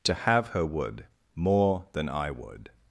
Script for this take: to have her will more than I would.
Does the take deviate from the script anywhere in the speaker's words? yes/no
yes